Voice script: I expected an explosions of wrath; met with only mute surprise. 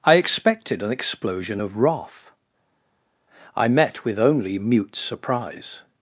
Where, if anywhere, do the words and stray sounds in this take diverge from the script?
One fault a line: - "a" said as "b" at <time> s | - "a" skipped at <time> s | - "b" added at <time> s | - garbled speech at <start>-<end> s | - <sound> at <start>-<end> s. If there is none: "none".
- "explosions" said as "explosion" at 0.9 s
- "I" added at 3.6 s